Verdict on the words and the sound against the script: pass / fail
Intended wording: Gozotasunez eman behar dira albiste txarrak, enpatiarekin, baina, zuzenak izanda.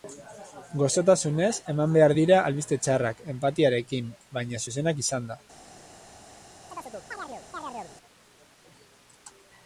fail